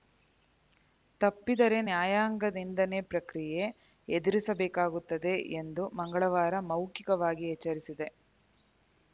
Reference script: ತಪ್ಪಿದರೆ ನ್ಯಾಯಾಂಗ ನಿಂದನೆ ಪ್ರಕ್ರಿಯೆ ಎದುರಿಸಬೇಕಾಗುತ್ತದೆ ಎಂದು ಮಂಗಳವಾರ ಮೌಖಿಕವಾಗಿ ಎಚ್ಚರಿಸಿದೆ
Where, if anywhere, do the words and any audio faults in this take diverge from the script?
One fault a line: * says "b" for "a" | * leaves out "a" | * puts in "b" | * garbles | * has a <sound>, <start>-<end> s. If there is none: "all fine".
all fine